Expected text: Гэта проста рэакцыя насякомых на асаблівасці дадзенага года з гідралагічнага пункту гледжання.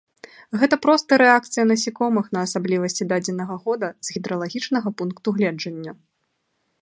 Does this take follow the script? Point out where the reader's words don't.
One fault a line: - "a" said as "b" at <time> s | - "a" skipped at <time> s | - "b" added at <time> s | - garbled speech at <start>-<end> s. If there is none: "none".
none